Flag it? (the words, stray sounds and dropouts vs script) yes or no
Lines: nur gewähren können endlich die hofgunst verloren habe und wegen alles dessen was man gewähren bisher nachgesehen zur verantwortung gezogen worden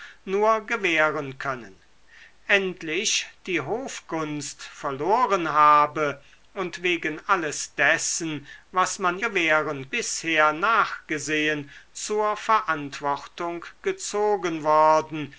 no